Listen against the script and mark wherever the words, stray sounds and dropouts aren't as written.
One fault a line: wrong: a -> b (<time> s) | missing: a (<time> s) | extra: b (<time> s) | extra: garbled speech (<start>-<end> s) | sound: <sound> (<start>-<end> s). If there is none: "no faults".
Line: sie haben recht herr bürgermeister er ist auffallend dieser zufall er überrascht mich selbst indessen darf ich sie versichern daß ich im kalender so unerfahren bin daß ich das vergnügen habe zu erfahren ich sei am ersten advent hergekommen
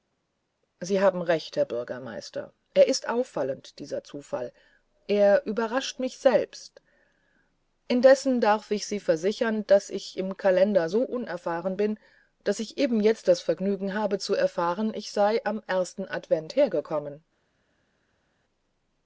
extra: eben jetzt (12.8 s)